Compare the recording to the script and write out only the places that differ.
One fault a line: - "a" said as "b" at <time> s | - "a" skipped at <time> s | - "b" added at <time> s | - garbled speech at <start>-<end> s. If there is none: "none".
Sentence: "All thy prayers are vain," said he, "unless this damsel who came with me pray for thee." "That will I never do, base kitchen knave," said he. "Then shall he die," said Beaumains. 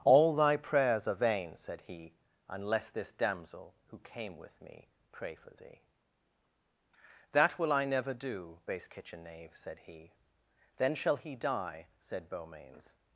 none